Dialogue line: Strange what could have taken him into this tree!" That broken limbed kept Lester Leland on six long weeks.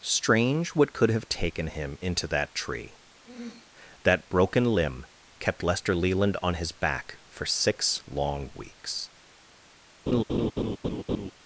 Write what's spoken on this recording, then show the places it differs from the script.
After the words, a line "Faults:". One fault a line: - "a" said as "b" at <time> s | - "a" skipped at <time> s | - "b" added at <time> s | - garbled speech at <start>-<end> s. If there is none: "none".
Strange what could have taken him into that tree!" That broken limb kept Lester Leland on his back for six long weeks.
Faults:
- "this" said as "that" at 2.3 s
- "limbed" said as "limb" at 4.7 s
- "his back for" added at 6.6 s